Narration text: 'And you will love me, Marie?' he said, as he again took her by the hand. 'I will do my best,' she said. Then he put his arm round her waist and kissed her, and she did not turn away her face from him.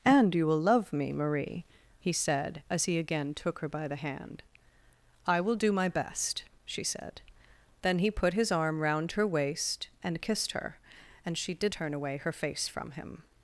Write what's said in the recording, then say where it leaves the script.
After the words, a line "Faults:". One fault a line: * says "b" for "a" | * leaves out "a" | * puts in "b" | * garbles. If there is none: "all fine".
'And you will love me, Marie?' he said, as he again took her by the hand. 'I will do my best,' she said. Then he put his arm round her waist and kissed her, and she did turn away her face from him.
Faults:
* leaves out "not"